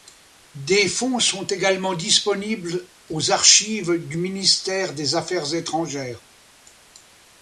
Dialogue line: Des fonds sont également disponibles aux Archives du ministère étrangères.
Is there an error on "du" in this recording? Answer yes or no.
no